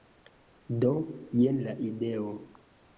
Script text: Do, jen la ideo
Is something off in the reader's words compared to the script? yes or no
no